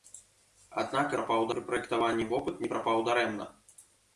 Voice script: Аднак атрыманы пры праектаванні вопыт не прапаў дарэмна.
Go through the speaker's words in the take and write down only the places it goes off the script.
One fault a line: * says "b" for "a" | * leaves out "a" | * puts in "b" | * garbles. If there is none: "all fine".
* says "прапаў" for "атрыманы"